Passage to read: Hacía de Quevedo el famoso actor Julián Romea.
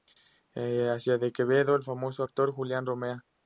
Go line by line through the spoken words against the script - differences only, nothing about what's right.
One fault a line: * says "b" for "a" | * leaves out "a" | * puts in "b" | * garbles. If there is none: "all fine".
all fine